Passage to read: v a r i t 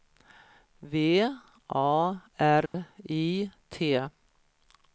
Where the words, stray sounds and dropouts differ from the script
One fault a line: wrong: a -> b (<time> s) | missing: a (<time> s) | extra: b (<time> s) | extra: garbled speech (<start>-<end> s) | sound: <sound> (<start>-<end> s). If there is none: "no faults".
sound: dropout (2.7-2.7 s)